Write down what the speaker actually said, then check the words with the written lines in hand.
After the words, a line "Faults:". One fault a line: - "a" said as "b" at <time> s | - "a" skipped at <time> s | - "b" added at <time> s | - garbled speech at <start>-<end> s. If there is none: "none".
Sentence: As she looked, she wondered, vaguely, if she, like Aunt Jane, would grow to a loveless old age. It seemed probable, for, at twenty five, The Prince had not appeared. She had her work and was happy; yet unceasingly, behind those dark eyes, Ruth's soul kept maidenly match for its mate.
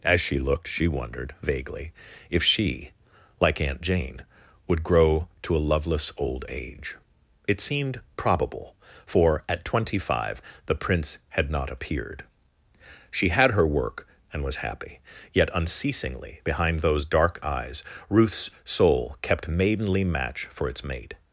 As she looked, she wondered, vaguely, if she, like Aunt Jane, would grow to a loveless old age. It seemed probable, for, at twenty five, The Prince had not appeared. She had her work and was happy; yet unceasingly, behind those dark eyes, Ruth's soul kept maidenly match for its mate.
Faults:
none